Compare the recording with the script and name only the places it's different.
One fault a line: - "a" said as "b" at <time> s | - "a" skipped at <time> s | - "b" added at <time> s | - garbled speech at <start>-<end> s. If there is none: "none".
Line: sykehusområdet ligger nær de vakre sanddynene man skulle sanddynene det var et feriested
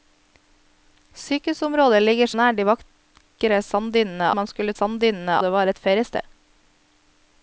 none